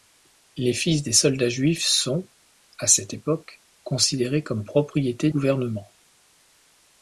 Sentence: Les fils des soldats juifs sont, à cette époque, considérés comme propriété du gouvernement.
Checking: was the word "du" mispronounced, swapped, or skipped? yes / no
yes